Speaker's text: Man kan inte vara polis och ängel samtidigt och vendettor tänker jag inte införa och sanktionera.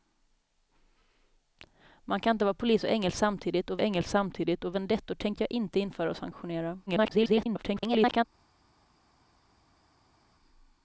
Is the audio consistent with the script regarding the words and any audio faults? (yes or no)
no